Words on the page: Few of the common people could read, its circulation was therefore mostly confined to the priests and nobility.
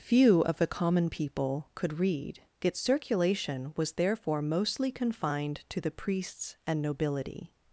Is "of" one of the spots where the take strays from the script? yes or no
no